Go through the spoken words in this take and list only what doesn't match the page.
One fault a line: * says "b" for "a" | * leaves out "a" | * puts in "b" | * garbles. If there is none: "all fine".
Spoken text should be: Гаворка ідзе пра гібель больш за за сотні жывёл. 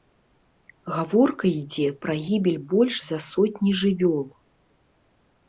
* leaves out "за"